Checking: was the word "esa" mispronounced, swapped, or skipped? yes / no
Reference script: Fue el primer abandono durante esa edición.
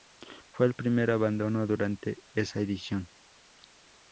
no